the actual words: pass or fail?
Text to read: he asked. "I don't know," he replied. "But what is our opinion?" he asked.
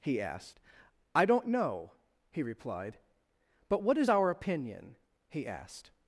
pass